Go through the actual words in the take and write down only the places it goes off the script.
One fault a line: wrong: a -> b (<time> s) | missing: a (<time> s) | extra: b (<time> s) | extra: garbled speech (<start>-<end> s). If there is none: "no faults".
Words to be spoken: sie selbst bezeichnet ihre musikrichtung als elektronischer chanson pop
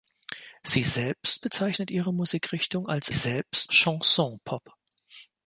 wrong: elektronischer -> selbst (3.1 s)